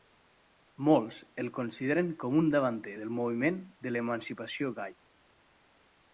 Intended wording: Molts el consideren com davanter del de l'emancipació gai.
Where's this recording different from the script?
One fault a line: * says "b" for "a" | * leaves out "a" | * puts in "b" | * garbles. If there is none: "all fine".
* puts in "un"
* puts in "moviment"